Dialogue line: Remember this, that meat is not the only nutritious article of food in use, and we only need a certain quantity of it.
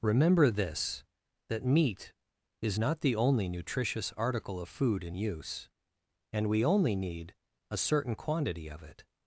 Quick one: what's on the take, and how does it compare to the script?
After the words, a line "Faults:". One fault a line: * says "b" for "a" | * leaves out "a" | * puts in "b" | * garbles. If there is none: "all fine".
Remember this, that meat is not the only nutritious article of food in use, and we only need a certain quantity of it.
Faults:
all fine